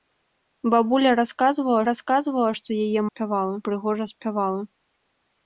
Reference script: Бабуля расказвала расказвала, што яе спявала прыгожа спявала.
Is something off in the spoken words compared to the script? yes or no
no